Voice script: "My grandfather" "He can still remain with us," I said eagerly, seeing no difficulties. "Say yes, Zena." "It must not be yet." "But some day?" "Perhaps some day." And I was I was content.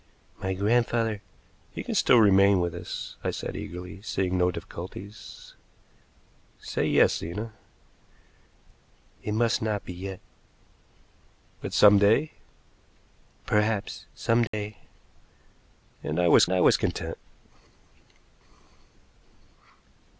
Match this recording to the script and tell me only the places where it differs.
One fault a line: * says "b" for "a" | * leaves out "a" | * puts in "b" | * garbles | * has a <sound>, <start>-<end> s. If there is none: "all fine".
* has a dropout, 14.5-14.5 s